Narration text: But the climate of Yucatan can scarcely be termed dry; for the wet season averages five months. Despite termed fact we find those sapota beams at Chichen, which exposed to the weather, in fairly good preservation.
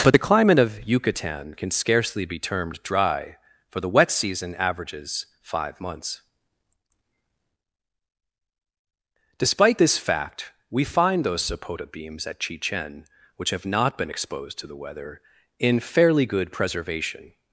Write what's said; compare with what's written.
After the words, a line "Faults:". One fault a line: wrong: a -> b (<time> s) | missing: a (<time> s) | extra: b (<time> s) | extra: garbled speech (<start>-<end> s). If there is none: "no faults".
But the climate of Yucatan can scarcely be termed dry; for the wet season averages five months. Despite this fact we find those sapota beams at Chichen, which have not been exposed to the weather, in fairly good preservation.
Faults:
wrong: termed -> this (9.8 s)
extra: have not been (13.5 s)